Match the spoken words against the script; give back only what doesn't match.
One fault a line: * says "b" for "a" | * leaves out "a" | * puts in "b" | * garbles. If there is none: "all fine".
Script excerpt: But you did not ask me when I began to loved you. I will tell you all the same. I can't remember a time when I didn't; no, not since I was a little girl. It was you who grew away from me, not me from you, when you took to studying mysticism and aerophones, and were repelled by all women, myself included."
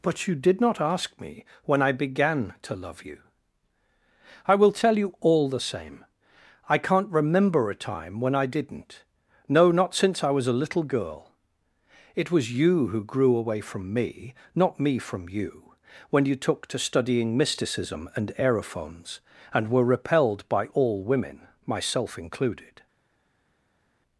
* says "love" for "loved"